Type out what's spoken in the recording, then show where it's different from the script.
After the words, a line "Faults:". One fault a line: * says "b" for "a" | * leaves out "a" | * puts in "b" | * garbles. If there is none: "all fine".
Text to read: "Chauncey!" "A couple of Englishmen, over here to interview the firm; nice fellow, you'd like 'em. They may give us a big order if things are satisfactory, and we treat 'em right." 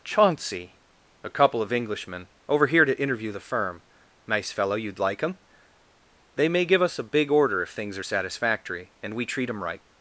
"Chauncey!" "A couple of Englishmen, over here to interview the firm; nice fellow, you'd like 'em. They may give us a big order if things are satisfactory, and we treat 'em right."
Faults:
all fine